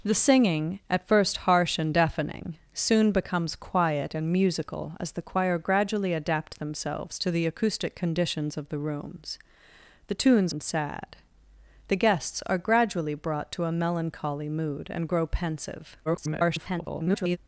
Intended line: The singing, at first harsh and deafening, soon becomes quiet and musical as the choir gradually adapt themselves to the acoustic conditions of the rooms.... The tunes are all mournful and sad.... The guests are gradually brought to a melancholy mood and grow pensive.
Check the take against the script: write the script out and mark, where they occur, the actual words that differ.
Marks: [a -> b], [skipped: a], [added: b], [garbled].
The singing, at first harsh and deafening, soon becomes quiet and musical as the choir gradually adapt themselves to the acoustic conditions of the rooms.... The tunes [skipped: are all mournful] and sad.... The guests are gradually brought to a melancholy mood and grow pensive. [garbled]